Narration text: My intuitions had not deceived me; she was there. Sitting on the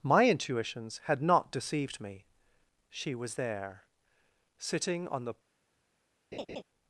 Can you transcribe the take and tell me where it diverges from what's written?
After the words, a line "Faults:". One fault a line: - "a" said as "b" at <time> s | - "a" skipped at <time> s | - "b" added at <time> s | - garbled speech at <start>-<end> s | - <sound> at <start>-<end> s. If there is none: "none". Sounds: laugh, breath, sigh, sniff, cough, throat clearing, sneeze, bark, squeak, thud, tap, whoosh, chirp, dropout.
My intuitions had not deceived me; she was there. Sitting on the
Faults:
- laugh at 6.3-6.6 s